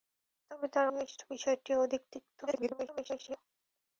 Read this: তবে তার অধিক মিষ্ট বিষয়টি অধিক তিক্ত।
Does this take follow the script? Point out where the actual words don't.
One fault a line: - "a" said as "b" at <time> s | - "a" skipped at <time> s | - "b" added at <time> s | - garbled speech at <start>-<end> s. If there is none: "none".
- "অধিক" skipped at 0.9 s
- garbled speech at 2.5-3.4 s